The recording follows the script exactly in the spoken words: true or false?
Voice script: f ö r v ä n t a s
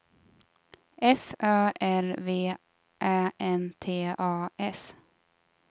true